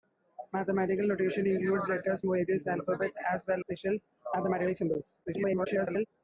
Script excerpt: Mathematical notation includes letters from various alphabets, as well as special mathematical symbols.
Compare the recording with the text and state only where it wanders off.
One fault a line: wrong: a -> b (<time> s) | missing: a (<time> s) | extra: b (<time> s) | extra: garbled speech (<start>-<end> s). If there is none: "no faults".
missing: from (2.2 s)
missing: as (3.6 s)
extra: garbled speech (5.2-6.1 s)